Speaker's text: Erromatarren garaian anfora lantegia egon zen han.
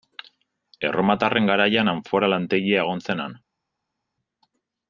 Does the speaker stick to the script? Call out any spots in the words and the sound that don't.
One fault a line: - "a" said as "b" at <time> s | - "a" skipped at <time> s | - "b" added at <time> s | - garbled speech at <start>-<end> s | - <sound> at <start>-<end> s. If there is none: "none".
none